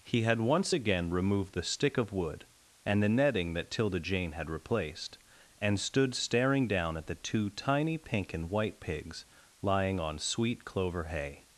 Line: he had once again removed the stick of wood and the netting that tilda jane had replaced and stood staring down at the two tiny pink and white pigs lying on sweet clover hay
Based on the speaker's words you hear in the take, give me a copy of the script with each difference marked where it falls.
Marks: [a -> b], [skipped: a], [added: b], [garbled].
he had once again removed the stick of wood and the netting that tilda jane had replaced and stood staring down at the two tiny pink and white pigs lying on sweet clover hay